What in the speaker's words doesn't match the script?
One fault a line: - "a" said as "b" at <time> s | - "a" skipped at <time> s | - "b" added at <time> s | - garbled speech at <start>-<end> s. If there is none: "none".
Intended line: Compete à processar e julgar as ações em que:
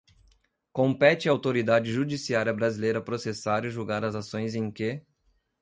- "autoridade judiciária brasileira" added at 1.3 s